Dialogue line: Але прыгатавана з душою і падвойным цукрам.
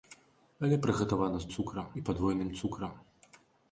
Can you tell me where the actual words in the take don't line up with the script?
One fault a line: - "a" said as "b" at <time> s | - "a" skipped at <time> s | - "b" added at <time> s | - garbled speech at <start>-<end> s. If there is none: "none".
- "душою" said as "цукрам" at 1.5 s